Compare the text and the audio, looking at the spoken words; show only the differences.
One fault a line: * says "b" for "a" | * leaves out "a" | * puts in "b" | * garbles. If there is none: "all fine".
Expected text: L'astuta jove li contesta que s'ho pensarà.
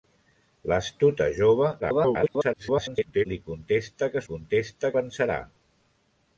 * garbles
* says "contesta" for "s'ho"